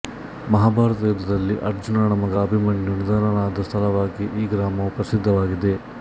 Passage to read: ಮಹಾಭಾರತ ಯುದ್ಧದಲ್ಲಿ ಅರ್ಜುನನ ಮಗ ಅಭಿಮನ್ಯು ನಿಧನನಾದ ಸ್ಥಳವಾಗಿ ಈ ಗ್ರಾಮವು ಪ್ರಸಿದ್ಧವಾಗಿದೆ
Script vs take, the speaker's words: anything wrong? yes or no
no